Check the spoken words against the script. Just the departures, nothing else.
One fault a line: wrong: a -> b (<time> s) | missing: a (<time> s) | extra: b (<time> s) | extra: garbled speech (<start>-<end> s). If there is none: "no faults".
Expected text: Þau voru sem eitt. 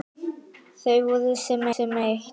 extra: sem (1.7 s)